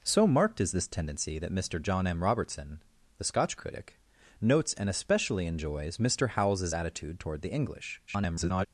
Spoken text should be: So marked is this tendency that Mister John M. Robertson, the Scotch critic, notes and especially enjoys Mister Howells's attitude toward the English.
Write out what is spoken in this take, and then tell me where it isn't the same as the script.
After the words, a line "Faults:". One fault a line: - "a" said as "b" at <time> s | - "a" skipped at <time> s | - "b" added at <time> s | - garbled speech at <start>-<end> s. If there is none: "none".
So marked is this tendency that Mister John M. Robertson, the Scotch critic, notes and especially enjoys Mister Howells's attitude toward the English. [garbled]
Faults:
- garbled speech at 8.1-8.7 s